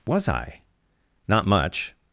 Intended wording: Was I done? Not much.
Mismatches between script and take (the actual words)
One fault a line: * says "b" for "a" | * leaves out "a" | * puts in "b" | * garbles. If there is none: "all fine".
* leaves out "done"